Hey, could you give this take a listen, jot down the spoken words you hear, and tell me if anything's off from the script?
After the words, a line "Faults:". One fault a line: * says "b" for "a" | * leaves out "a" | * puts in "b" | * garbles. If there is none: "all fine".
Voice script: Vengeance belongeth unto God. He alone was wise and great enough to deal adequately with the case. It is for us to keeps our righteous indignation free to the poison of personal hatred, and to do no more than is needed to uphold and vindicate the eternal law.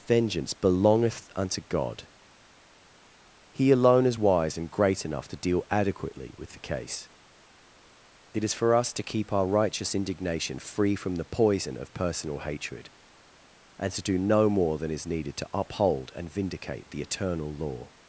Vengeance belongeth unto God. He alone is wise and great enough to deal adequately with the case. It is for us to keep our righteous indignation free from the poison of personal hatred, and to do no more than is needed to uphold and vindicate the eternal law.
Faults:
* says "is" for "was"
* says "keep" for "keeps"
* says "from" for "to"